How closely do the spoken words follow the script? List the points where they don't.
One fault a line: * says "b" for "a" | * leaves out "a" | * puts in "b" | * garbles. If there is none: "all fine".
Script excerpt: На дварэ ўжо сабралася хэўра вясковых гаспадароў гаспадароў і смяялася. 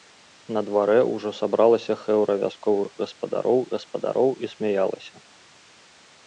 all fine